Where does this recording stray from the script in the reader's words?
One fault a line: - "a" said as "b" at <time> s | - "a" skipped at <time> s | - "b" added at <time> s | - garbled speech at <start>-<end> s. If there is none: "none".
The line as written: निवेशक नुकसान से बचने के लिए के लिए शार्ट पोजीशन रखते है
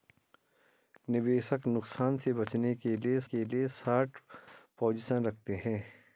none